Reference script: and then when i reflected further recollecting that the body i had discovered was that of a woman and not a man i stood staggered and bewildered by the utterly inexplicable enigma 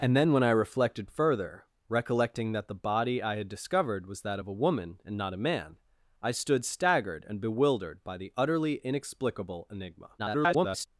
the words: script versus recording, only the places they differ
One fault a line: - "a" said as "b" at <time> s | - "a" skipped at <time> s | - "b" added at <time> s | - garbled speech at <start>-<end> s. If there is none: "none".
- garbled speech at 10.2-10.9 s